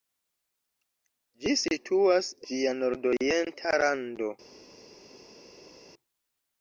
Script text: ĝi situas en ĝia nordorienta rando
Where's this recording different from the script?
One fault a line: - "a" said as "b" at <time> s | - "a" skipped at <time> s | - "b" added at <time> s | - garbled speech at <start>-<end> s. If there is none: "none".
- "en" skipped at 2.3 s